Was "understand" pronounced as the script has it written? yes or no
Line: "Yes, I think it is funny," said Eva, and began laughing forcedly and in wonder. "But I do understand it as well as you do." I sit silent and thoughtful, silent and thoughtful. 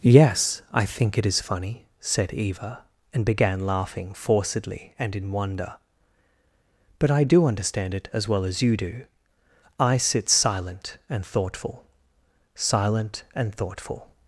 yes